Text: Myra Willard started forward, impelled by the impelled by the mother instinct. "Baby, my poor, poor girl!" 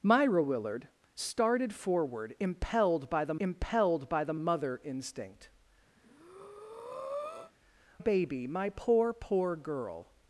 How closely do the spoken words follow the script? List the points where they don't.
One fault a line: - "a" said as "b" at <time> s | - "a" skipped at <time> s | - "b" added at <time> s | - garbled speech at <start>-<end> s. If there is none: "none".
none